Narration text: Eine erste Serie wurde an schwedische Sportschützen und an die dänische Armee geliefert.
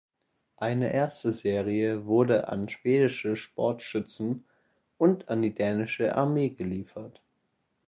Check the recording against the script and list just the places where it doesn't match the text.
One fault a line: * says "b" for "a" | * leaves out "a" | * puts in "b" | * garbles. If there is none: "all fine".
all fine